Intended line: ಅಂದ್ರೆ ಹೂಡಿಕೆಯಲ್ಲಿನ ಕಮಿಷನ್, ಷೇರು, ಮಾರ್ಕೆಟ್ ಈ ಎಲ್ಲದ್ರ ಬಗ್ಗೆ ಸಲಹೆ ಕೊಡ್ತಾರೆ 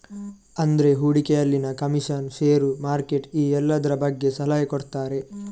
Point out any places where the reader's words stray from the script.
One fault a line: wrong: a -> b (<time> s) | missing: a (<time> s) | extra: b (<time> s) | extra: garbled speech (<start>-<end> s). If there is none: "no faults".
no faults